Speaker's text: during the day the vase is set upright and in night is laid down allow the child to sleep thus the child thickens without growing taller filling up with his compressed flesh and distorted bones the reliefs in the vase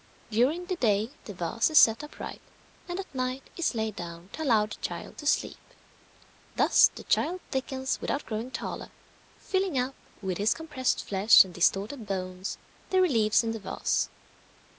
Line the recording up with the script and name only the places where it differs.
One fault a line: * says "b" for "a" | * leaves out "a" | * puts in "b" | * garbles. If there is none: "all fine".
* says "at" for "in"
* puts in "to"